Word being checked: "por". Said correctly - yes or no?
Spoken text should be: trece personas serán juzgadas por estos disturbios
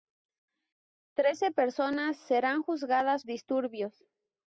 no